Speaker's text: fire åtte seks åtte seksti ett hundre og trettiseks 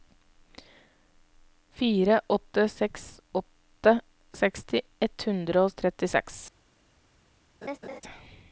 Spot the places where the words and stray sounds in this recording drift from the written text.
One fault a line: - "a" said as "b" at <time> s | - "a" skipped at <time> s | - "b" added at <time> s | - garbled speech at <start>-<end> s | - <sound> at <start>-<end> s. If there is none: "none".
- laugh at 7.6-8.0 s